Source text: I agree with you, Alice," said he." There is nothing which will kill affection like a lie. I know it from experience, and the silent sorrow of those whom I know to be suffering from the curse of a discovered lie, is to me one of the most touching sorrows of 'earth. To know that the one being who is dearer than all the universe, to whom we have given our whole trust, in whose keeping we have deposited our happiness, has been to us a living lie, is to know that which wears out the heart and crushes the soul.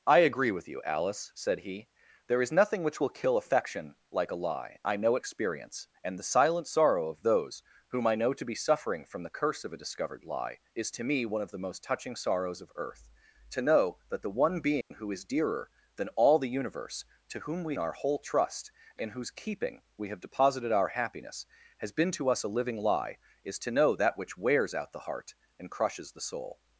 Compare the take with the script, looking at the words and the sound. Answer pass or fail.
fail